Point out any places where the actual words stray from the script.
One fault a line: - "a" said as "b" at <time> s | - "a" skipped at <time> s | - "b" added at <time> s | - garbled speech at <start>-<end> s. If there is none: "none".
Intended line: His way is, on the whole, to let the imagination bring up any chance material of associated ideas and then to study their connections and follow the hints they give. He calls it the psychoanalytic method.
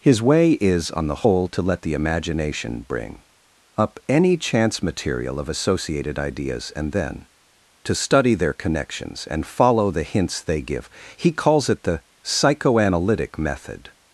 none